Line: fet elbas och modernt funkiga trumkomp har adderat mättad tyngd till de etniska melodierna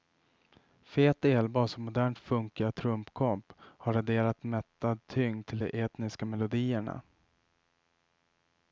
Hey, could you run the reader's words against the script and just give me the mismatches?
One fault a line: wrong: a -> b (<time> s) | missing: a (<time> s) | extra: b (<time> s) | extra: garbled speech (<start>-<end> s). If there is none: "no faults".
no faults